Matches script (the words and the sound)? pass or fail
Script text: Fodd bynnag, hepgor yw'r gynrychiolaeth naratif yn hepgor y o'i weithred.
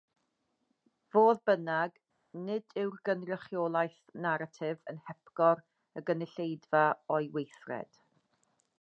fail